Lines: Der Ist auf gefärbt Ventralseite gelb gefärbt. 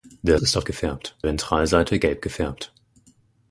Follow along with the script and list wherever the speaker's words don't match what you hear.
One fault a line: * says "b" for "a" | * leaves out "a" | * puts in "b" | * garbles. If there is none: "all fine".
all fine